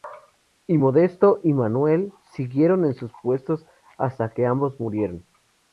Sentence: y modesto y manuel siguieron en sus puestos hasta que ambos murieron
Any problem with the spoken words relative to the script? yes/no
no